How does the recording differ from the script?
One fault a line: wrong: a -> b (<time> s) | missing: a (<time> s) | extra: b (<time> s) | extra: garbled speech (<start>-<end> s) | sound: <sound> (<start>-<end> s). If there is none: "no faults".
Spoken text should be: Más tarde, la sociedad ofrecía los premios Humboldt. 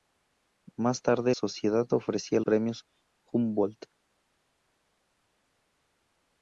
missing: la (1.4 s)
missing: los (2.4 s)